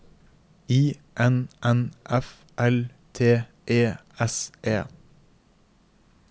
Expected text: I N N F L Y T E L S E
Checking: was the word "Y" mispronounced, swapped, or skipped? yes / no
yes